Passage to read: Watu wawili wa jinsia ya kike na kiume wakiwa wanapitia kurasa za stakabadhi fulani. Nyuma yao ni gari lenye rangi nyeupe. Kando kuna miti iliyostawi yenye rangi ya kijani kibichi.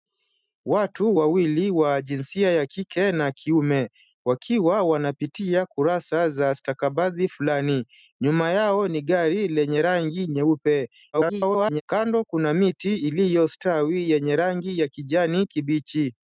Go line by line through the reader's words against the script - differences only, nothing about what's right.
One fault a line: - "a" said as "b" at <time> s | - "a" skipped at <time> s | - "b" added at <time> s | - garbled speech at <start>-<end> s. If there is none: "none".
- garbled speech at 11.1-11.8 s